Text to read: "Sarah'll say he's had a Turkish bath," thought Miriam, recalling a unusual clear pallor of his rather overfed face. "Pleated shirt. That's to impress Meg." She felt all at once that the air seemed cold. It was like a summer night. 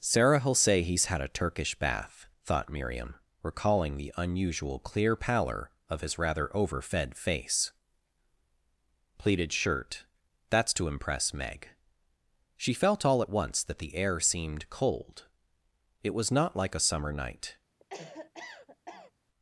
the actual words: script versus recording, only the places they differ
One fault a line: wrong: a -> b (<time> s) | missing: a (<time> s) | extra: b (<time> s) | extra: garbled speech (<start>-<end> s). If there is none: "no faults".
wrong: a -> the (4.0 s)
extra: not (16.3 s)